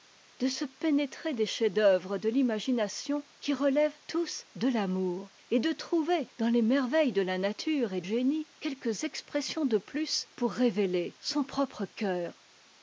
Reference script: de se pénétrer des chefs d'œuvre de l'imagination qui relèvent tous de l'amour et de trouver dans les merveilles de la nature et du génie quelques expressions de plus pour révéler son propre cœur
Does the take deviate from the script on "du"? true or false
true